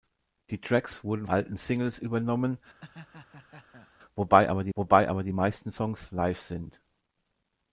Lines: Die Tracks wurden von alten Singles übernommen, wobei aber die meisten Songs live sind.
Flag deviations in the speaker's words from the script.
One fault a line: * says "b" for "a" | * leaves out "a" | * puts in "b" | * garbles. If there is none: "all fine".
* leaves out "von"
* puts in "wobei aber die"